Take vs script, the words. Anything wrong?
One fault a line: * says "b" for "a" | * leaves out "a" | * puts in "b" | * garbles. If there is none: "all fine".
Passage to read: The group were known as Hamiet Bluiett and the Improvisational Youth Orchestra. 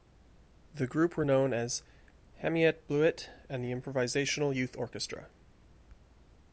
all fine